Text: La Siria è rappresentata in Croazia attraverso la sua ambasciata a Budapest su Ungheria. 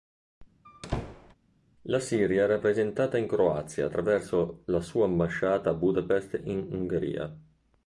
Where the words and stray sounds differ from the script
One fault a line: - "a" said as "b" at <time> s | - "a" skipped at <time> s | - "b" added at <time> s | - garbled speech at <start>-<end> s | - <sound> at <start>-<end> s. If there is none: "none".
- squeak at 0.6-1.3 s
- "su" said as "in" at 6.4 s